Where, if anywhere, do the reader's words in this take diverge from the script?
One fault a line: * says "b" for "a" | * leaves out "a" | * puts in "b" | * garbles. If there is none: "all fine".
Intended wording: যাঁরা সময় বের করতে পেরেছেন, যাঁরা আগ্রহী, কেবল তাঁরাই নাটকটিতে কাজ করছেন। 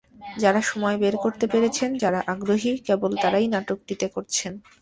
* leaves out "কাজ"